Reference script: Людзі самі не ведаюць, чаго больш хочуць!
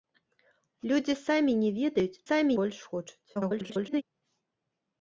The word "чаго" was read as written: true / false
false